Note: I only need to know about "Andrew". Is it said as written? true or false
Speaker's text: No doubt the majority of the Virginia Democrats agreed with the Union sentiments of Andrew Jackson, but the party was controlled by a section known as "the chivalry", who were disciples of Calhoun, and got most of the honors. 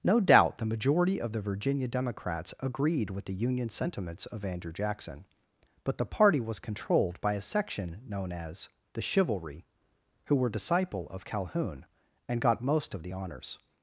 true